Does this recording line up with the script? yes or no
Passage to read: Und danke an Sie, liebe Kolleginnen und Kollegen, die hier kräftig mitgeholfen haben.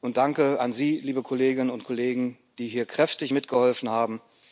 yes